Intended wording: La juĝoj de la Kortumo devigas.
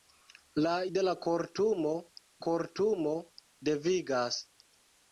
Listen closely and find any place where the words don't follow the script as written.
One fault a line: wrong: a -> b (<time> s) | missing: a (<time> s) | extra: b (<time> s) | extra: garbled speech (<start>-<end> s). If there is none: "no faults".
missing: juĝoj (0.7 s)
extra: Kortumo (2.5 s)